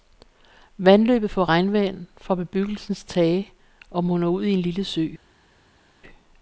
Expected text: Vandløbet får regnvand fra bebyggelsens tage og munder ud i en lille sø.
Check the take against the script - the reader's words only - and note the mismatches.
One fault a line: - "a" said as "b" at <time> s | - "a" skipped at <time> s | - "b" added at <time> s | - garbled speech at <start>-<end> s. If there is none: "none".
none